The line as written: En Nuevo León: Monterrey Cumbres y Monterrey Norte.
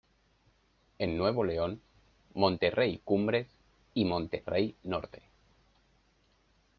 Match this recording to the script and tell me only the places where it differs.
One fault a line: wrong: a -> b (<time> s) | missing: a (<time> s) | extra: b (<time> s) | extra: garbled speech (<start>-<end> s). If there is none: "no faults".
no faults